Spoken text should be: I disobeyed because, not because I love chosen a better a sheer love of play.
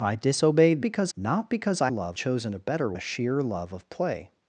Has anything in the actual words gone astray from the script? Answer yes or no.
no